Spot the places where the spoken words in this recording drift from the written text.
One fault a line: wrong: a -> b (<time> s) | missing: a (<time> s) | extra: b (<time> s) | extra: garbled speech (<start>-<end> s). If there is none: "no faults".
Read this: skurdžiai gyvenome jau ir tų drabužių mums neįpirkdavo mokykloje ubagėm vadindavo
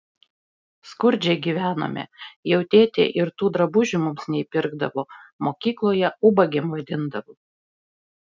extra: tėtė (2.8 s)